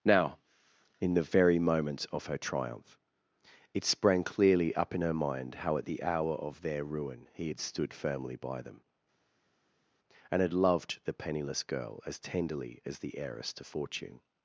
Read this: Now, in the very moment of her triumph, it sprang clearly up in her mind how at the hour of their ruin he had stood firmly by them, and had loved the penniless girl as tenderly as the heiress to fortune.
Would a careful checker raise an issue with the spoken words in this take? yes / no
no